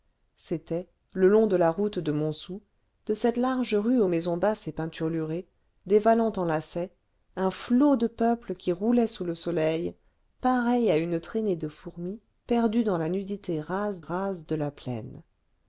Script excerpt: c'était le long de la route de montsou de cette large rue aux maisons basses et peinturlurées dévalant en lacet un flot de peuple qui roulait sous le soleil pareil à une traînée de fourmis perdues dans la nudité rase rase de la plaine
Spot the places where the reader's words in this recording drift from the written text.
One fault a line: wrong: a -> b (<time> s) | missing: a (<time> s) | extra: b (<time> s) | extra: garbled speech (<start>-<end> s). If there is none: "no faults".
no faults